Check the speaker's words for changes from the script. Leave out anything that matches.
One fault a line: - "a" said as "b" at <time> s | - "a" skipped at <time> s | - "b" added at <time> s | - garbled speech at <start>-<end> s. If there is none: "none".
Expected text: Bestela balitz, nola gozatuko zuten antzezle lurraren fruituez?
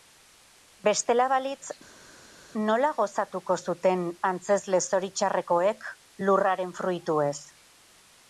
- "zoritxarrekoek" added at 4.9 s